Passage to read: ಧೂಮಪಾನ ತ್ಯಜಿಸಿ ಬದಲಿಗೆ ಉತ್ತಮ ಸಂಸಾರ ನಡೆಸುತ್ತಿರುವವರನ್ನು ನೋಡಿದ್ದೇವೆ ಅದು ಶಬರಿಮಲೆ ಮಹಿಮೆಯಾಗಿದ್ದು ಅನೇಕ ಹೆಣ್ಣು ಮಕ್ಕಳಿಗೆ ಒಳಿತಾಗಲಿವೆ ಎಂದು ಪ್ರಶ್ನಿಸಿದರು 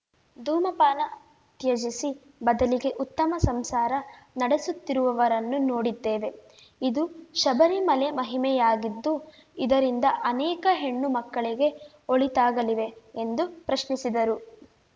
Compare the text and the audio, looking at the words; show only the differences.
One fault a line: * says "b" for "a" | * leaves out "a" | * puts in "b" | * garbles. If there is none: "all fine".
* says "ಇದು" for "ಅದು"
* puts in "ಇದರಿಂದ"